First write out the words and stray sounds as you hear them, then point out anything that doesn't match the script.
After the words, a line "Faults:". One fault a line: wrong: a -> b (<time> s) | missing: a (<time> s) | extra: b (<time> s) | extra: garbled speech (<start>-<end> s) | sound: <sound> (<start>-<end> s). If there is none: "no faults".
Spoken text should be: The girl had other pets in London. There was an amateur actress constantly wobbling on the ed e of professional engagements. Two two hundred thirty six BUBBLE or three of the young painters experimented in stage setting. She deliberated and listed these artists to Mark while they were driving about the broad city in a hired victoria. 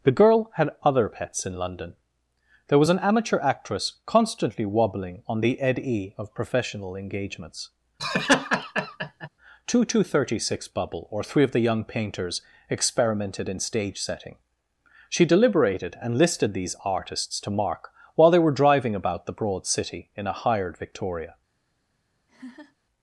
The girl had other pets in London. There was an amateur actress constantly wobbling on the ed e of professional engagements. Two two thirty six BUBBLE or three of the young painters experimented in stage setting. She deliberated and listed these artists to Mark while they were driving about the broad city in a hired victoria.
Faults:
sound: laugh (8.0-9.3 s)
missing: hundred (10.0 s)
sound: laugh (22.3-22.8 s)